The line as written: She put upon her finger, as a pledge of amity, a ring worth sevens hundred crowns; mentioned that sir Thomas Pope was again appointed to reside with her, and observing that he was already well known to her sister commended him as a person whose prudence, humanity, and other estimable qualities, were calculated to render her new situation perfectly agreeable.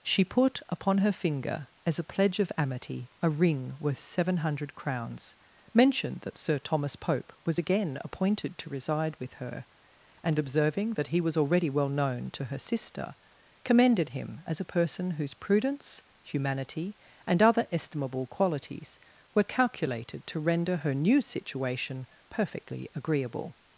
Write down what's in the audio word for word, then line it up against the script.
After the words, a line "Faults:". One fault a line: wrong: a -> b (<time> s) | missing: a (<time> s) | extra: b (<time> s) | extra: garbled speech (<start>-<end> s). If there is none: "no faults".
She put upon her finger, as a pledge of amity, a ring worth seven hundred crowns; mentioned that sir Thomas Pope was again appointed to reside with her, and observing that he was already well known to her sister commended him as a person whose prudence, humanity, and other estimable qualities, were calculated to render her new situation perfectly agreeable.
Faults:
wrong: sevens -> seven (4.0 s)